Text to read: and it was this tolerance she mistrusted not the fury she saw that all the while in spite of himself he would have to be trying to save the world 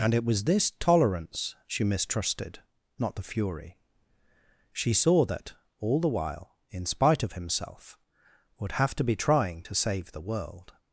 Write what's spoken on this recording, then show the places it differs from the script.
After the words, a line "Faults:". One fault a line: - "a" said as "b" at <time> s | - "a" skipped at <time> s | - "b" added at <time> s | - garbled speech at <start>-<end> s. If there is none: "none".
and it was this tolerance she mistrusted not the fury she saw that all the while in spite of himself would have to be trying to save the world
Faults:
- "he" skipped at 8.0 s